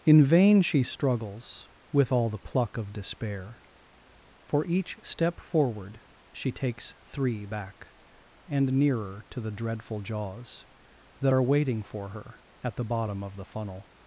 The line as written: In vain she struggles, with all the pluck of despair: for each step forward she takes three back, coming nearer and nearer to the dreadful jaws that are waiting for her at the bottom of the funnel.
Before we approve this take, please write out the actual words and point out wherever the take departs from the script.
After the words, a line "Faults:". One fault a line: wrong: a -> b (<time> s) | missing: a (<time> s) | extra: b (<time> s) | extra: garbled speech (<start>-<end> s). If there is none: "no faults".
In vain she struggles, with all the pluck of despair: for each step forward she takes three back, and nearer to the dreadful jaws that are waiting for her at the bottom of the funnel.
Faults:
missing: coming nearer (7.9 s)